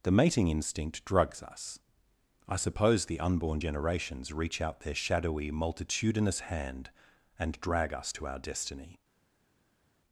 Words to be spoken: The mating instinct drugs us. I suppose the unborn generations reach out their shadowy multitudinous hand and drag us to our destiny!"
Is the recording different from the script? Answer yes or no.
no